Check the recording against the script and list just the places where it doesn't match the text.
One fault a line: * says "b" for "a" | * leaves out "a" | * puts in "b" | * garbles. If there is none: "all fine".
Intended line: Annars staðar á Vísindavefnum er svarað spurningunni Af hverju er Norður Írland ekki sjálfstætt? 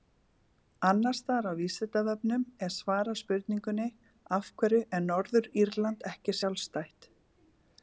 all fine